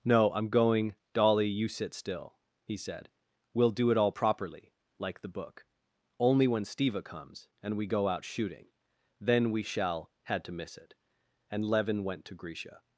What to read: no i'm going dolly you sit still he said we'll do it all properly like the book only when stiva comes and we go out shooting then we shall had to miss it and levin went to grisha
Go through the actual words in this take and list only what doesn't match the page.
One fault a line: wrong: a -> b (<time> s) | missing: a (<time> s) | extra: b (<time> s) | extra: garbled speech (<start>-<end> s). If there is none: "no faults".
no faults